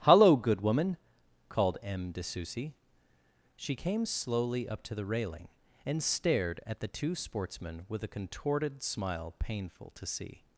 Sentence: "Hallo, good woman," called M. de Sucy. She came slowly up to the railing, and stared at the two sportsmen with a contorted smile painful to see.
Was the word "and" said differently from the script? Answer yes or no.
no